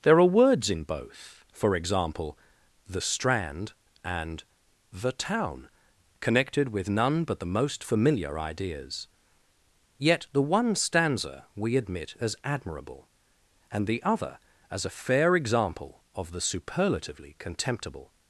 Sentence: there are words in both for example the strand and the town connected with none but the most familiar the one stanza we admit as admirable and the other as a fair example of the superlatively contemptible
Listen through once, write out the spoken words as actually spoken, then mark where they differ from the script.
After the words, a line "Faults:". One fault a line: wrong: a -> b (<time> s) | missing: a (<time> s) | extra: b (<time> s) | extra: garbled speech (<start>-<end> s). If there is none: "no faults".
there are words in both for example the strand and the town connected with none but the most familiar ideas yet the one stanza we admit as admirable and the other as a fair example of the superlatively contemptible
Faults:
extra: ideas yet (8.4 s)